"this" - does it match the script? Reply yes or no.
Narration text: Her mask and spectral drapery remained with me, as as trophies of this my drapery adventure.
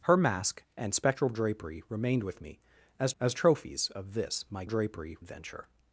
yes